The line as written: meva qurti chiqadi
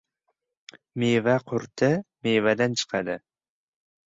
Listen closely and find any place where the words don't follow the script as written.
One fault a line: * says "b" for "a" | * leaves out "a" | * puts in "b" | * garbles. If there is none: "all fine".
* puts in "mevadan"